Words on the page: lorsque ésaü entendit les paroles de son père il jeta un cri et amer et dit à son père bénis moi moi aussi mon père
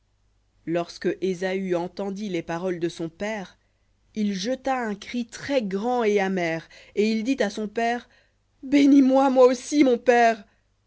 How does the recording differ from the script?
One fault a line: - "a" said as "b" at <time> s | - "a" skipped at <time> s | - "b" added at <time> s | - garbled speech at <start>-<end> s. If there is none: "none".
- "très grand" added at 5.3 s
- "il" added at 7.1 s